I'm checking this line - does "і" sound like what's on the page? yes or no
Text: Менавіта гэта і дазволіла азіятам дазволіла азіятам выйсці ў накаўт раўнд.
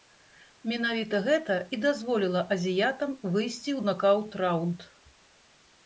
yes